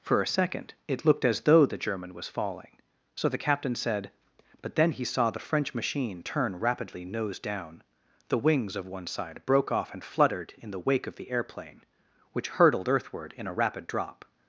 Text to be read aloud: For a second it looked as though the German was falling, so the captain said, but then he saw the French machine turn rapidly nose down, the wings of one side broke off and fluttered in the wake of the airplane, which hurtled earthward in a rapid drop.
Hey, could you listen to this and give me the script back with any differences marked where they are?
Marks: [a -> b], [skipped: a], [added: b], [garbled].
For a second it looked as though the German was falling, so the captain said, but then he saw the French machine turn rapidly nose down, the wings of one side broke off and fluttered in the wake of the airplane, which hurtled earthward in a rapid drop.